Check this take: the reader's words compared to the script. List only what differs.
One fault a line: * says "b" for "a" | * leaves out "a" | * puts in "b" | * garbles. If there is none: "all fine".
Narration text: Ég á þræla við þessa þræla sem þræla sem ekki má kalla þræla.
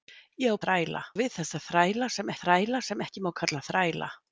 all fine